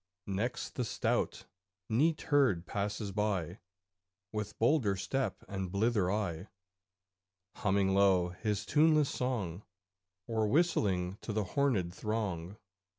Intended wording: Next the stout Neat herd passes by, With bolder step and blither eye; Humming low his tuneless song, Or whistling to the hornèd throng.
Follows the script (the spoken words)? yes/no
yes